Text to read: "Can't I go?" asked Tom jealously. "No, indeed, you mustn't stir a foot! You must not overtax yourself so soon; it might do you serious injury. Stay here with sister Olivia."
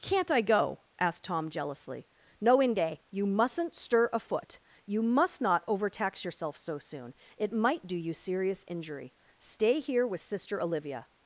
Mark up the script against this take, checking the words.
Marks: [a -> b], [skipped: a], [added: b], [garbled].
"Can't I go?" asked Tom jealously. "No, [indeed, -> inde] you mustn't stir a foot! You must not overtax yourself so soon; it might do you serious injury. Stay here with sister Olivia."